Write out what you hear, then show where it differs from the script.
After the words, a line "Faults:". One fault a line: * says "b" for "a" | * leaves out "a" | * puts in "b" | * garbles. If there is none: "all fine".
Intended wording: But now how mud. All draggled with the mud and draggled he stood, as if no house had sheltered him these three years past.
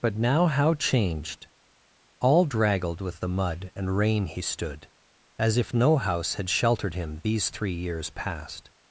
But now how changed. All draggled with the mud and rain he stood, as if no house had sheltered him these three years past.
Faults:
* says "changed" for "mud"
* says "rain" for "draggled"